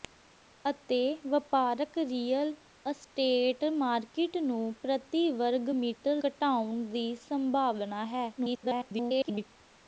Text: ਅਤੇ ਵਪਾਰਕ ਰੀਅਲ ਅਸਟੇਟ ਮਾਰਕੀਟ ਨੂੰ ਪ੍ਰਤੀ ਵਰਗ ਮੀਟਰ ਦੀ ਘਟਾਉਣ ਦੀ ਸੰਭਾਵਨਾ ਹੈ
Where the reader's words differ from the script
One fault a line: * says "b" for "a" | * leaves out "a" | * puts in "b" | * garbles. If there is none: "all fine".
* leaves out "ਦੀ"
* garbles